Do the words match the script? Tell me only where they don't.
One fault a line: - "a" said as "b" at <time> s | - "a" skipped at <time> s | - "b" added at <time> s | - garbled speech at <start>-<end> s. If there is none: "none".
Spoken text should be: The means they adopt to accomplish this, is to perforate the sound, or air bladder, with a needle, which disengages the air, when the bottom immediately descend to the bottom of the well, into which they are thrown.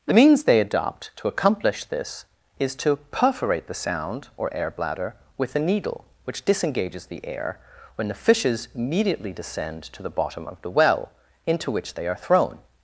- "bottom" said as "fishes" at 8.1 s